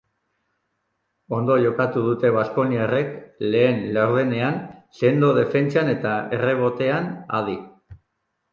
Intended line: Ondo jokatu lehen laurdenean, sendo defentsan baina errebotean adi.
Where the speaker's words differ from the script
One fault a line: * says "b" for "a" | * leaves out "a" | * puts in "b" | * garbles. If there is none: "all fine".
* puts in "dute baskoniarrek"
* says "eta" for "baina"